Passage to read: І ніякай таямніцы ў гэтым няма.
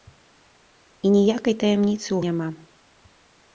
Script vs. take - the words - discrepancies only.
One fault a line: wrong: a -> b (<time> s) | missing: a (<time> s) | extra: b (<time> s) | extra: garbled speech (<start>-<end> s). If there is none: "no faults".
missing: гэтым (2.2 s)